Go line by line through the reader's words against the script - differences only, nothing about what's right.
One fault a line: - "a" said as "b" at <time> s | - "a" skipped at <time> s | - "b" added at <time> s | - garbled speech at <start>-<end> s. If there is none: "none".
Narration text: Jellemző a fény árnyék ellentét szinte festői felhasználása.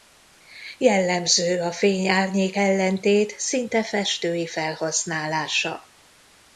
none